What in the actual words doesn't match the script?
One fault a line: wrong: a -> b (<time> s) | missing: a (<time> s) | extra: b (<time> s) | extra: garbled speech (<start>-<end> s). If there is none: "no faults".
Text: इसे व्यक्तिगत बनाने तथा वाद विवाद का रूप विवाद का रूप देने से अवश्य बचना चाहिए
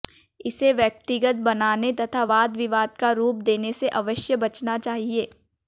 missing: विवाद का रूप (3.4 s)